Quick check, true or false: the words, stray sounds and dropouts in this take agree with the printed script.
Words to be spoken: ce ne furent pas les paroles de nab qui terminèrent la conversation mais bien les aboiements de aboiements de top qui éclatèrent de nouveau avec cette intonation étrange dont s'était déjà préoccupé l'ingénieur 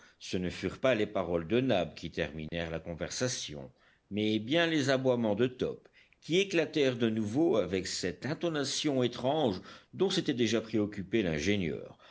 false